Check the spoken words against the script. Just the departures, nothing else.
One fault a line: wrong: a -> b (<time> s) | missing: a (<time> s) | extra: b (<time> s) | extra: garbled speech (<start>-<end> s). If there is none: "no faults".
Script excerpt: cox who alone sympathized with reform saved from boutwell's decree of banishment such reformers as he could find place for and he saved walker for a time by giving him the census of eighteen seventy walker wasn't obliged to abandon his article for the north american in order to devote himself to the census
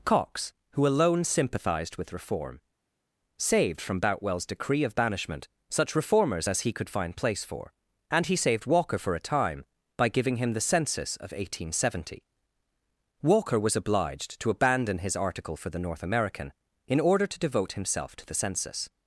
wrong: wasn't -> was (13.6 s)